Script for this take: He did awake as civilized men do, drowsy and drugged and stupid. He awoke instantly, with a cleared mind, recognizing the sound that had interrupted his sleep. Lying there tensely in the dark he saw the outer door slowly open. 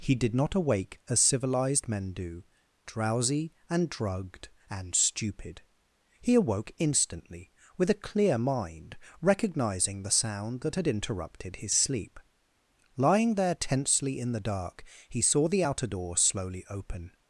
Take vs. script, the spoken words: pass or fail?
fail